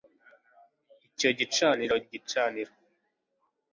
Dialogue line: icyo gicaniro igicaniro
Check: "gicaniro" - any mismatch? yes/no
no